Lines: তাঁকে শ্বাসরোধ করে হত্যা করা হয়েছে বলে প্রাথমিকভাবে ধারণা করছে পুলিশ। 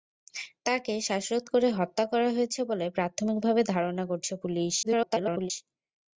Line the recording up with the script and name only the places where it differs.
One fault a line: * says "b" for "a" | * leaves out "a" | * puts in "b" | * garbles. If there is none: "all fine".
* garbles